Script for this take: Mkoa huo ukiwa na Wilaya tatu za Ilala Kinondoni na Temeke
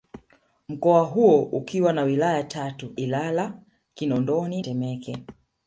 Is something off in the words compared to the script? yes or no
yes